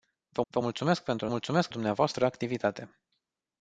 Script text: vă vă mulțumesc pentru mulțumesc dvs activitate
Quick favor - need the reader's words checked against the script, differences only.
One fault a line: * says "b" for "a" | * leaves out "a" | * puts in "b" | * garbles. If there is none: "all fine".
all fine